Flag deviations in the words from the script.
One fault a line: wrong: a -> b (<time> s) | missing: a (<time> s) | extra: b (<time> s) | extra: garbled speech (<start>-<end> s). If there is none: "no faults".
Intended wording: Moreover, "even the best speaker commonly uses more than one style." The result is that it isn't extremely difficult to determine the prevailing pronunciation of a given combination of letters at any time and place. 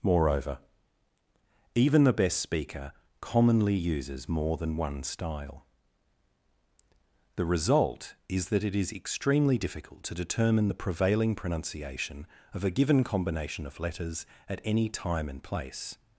wrong: isn't -> is (8.8 s)